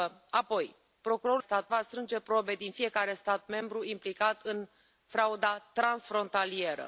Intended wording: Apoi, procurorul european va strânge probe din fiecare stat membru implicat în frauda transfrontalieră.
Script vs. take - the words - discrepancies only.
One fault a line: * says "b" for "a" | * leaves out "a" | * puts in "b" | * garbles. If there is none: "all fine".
* says "stat" for "european"